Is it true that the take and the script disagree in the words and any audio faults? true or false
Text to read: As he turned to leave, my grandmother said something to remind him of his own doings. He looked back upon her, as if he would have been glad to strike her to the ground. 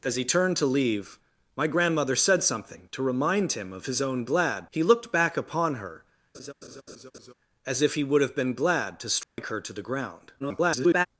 true